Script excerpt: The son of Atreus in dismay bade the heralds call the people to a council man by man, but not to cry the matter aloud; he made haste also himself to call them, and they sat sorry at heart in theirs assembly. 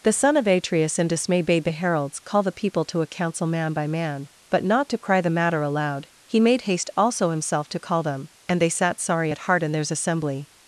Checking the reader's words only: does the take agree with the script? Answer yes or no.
yes